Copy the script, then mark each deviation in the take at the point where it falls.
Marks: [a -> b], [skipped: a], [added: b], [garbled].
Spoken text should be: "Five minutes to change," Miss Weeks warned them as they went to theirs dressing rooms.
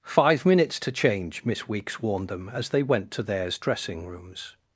"Five minutes to change," Miss Weeks warned them as they went to theirs dressing rooms.